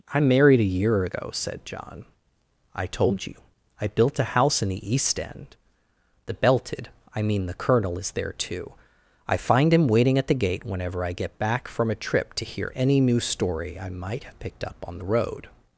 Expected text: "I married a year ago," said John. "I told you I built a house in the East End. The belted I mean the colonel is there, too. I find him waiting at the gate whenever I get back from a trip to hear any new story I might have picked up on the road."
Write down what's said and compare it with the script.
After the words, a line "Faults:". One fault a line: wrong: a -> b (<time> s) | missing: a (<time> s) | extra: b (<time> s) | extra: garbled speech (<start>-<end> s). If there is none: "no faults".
"I married a year ago," said John. "I told you I built a house in the East End. The belted I mean the colonel is there, too. I find him waiting at the gate whenever I get back from a trip to hear any new story I might have picked up on the road."
Faults:
no faults